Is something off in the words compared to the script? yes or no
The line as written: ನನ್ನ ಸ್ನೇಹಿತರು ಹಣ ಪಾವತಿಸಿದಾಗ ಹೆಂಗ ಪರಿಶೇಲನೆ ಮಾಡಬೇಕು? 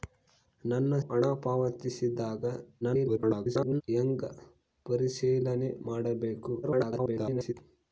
yes